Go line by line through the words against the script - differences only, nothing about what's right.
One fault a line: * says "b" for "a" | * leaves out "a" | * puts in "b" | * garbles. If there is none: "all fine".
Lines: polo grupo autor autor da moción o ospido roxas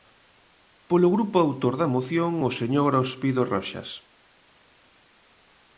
* leaves out "autor"
* puts in "señor"